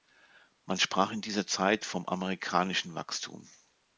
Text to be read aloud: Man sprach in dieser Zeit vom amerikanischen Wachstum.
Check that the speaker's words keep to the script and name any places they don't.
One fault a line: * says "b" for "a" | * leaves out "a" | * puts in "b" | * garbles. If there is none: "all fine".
all fine